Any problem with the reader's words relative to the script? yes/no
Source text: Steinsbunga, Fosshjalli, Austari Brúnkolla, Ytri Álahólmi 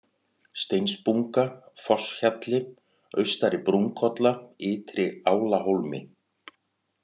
no